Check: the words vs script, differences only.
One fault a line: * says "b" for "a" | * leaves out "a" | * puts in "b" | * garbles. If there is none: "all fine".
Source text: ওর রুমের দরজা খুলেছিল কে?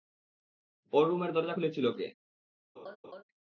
all fine